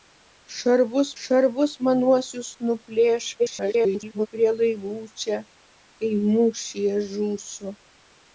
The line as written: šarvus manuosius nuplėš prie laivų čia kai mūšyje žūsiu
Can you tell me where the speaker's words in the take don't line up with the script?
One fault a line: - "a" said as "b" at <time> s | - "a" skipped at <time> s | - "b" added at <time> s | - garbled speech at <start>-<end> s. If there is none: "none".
- "šarvus" added at 1.2 s
- garbled speech at 3.4-4.3 s